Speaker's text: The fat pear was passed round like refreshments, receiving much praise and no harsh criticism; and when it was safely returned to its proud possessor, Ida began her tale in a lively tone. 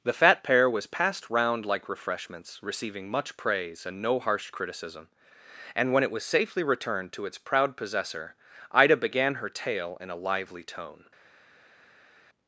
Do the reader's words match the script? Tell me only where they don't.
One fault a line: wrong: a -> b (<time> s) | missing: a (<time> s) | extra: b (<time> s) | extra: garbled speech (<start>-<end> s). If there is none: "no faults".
no faults